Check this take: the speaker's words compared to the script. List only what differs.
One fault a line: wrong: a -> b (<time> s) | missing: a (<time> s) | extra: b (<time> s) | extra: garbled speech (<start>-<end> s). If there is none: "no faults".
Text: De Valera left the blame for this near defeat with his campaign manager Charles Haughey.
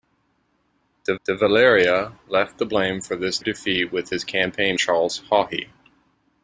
extra: de (1.2 s)
missing: near (3.4 s)
missing: manager (4.8 s)